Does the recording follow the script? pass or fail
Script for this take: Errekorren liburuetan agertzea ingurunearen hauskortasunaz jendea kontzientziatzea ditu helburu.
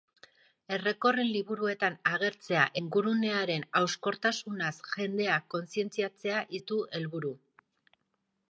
pass